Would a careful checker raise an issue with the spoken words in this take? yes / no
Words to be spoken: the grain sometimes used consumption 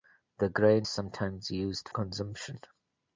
no